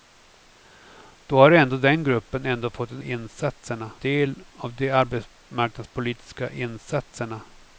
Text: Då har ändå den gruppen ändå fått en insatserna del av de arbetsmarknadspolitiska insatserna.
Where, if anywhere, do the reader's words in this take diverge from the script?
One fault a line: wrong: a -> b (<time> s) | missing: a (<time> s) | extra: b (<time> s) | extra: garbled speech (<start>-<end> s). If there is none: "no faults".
no faults